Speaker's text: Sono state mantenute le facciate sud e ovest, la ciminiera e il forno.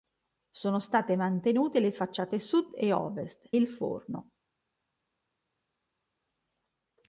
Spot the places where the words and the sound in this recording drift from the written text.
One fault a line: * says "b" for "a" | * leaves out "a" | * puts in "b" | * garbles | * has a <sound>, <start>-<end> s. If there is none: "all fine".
* leaves out "la ciminiera e"